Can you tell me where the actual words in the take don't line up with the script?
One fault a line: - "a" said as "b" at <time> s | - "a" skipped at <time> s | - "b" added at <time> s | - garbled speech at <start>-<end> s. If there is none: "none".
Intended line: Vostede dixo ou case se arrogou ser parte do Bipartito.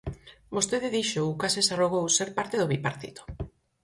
none